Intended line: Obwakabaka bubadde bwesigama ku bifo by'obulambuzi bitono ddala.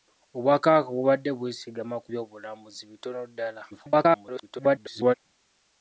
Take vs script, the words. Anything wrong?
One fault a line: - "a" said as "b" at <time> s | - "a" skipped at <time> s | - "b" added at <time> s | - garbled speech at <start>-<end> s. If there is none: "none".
- "bifo" skipped at 2.1 s
- garbled speech at 3.7-5.1 s